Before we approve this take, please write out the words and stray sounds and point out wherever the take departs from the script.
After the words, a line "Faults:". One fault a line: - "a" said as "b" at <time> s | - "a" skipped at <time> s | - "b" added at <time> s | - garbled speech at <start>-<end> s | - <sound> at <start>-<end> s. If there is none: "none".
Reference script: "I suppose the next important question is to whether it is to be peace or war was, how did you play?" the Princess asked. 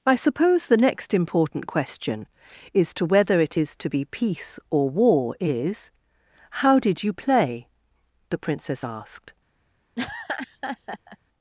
"I suppose the next important question is to whether it is to be peace or war is, how did you play?" the Princess asked.
Faults:
- "was" said as "is" at 5.4 s
- laugh at 10.0-11.2 s